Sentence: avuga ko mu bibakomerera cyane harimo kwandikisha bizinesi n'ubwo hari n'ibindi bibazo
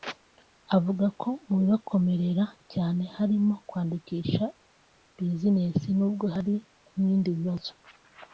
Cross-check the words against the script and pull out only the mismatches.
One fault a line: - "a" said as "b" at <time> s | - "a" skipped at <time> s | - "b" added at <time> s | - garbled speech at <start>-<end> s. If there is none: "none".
none